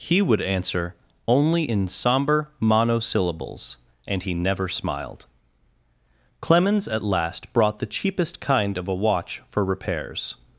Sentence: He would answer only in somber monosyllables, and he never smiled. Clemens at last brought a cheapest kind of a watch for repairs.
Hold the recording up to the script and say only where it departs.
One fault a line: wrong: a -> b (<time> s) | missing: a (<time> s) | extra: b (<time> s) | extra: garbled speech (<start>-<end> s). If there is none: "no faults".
wrong: a -> the (7.8 s)